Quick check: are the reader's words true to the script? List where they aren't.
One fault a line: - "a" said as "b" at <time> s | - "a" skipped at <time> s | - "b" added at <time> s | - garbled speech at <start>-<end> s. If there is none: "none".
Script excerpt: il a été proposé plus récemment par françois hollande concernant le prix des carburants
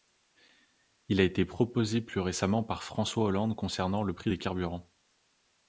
none